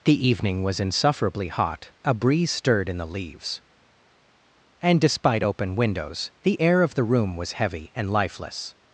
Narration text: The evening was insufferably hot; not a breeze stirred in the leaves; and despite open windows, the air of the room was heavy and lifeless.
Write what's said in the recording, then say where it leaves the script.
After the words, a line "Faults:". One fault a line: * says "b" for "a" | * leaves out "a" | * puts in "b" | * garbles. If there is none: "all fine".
The evening was insufferably hot; a breeze stirred in the leaves; and despite open windows, the air of the room was heavy and lifeless.
Faults:
* leaves out "not"